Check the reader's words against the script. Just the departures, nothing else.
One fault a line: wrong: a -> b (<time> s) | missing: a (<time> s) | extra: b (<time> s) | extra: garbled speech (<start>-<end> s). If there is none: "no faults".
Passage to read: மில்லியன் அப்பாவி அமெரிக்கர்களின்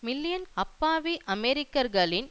no faults